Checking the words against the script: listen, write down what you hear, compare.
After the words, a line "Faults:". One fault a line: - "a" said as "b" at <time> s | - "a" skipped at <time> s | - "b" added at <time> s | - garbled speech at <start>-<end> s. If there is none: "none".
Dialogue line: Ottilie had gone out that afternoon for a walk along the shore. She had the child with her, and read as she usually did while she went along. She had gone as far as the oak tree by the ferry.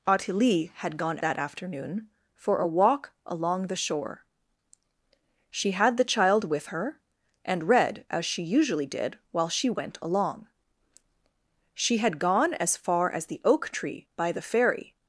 Ottilie had gone that afternoon for a walk along the shore. She had the child with her, and read as she usually did while she went along. She had gone as far as the oak tree by the ferry.
Faults:
- "out" skipped at 1.2 s